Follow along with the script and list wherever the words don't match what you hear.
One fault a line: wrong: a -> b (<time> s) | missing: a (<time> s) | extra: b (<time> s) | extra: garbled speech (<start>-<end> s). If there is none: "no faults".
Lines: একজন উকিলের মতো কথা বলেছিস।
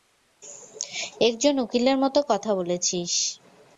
no faults